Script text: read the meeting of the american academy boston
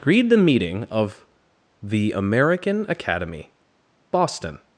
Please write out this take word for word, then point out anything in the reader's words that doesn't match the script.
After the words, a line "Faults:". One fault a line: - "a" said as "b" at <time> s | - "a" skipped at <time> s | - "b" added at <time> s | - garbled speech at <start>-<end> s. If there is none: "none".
read the meeting of the american academy boston
Faults:
none